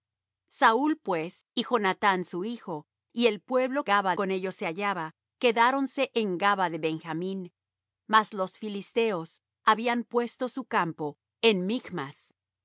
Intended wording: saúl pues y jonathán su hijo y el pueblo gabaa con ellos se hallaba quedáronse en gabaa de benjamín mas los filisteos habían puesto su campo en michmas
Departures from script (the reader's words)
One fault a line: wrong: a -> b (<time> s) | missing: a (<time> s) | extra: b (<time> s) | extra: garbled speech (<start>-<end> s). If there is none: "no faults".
no faults